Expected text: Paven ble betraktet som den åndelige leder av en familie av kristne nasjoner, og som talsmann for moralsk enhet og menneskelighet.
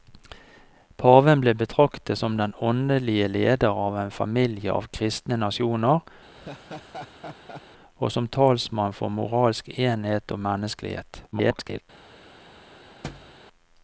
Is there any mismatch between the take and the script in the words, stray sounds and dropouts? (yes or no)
yes